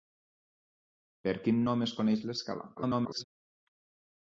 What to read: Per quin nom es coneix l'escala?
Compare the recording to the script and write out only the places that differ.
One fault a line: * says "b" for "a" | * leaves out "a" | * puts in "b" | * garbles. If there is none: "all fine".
* garbles